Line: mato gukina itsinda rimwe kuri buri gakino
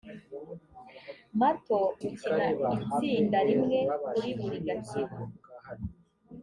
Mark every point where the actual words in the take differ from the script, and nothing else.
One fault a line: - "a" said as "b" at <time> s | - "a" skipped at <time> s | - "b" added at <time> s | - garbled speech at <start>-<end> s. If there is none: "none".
none